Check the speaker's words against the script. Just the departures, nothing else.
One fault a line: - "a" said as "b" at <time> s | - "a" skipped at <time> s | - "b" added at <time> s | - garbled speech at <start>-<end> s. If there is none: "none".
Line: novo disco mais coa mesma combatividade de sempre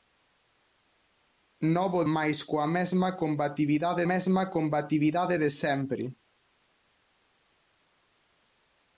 - "disco" skipped at 2.0 s
- "mesma combatividade" added at 4.1 s